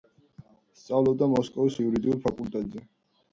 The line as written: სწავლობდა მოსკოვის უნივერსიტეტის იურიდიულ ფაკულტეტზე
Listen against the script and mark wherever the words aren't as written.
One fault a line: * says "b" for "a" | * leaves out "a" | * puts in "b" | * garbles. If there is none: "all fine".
* leaves out "უნივერსიტეტის"